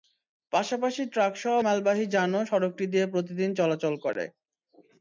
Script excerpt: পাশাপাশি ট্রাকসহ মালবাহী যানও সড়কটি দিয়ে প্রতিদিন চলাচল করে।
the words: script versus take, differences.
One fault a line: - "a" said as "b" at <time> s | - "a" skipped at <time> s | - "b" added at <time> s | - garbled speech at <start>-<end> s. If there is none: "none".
none